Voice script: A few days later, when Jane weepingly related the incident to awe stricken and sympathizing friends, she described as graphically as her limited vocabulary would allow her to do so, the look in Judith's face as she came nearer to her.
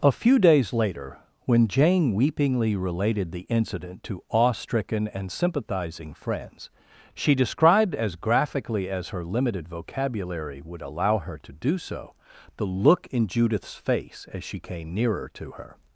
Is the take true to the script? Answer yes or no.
yes